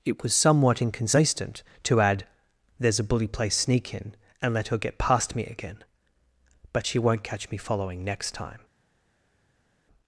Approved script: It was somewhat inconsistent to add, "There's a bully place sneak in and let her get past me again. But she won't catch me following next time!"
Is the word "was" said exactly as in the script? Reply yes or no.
yes